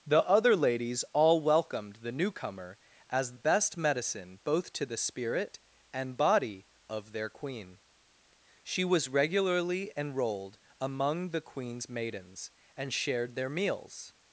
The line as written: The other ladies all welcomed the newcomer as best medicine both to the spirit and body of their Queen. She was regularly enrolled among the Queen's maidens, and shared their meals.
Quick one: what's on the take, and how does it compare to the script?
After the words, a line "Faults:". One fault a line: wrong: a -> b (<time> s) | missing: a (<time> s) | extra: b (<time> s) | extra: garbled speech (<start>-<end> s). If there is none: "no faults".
The other ladies all welcomed the newcomer as best medicine both to the spirit and body of their Queen. She was regularly enrolled among the Queen's maidens, and shared their meals.
Faults:
no faults